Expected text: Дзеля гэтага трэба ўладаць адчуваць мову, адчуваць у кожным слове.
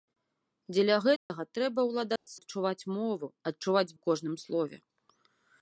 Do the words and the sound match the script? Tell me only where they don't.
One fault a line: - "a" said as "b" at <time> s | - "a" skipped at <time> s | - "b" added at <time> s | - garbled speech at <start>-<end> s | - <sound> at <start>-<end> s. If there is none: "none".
- dropout at 1.2-1.3 s
- dropout at 2.2-2.3 s